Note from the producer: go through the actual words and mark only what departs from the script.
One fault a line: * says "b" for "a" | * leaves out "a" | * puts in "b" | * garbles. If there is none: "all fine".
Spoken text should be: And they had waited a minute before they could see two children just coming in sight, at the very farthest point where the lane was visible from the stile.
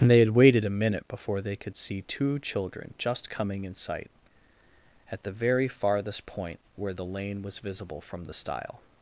all fine